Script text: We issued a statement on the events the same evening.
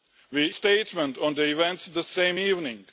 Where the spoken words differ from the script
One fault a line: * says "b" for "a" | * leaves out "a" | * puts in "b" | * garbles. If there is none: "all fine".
* leaves out "issued a"